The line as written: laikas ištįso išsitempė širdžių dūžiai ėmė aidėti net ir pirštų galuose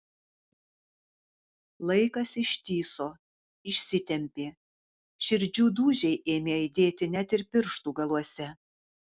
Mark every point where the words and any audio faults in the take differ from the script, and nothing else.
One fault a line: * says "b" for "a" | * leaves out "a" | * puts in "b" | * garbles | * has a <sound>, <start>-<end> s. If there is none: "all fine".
all fine